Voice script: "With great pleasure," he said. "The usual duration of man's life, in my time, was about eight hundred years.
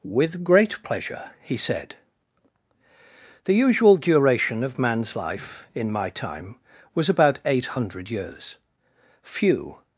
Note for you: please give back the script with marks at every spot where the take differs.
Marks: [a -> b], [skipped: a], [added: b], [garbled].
"With great pleasure," he said. "The usual duration of man's life, in my time, was about eight hundred years. [added: Few]